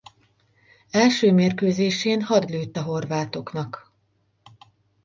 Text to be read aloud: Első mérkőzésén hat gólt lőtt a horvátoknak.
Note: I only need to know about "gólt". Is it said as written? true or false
false